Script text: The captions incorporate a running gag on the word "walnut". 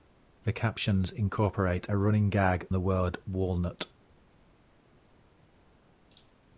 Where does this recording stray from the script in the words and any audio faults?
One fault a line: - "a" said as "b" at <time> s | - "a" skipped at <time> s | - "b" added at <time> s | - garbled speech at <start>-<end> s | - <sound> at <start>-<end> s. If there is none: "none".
- "on" skipped at 2.7 s